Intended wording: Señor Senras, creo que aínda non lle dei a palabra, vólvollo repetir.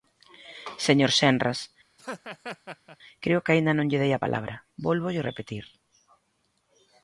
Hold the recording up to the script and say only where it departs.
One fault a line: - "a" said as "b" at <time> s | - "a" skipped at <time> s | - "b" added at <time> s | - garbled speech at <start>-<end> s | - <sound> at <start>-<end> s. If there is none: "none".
- laugh at 2.0-3.0 s